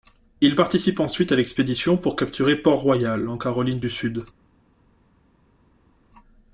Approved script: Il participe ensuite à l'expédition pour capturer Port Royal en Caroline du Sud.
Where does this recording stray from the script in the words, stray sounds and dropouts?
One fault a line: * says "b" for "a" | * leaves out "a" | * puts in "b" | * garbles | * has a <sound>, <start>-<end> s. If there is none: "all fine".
all fine